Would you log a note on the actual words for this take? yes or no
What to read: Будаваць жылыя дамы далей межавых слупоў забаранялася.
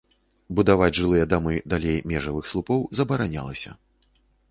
no